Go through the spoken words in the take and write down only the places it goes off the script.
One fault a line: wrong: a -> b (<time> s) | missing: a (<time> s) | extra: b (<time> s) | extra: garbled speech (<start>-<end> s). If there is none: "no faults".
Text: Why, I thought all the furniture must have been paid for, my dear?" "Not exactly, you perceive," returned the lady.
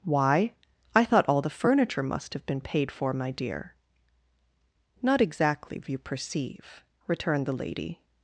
no faults